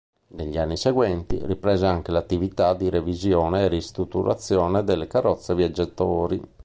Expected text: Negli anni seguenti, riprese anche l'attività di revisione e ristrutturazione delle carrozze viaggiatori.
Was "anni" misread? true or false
false